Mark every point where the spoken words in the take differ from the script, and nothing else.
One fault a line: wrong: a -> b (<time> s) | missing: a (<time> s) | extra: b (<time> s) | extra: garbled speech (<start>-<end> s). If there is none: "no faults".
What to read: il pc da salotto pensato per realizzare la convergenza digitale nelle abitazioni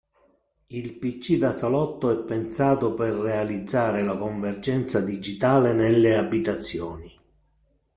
extra: è (2.1 s)